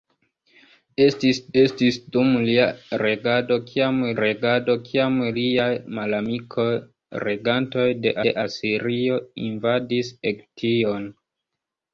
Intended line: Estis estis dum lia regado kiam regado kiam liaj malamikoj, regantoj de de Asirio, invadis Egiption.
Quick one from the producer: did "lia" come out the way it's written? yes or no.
yes